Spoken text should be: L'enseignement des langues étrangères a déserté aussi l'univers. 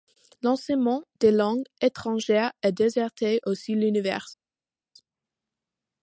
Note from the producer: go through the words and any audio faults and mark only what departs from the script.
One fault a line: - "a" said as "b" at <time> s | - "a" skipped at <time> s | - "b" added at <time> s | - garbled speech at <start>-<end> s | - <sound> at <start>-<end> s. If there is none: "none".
none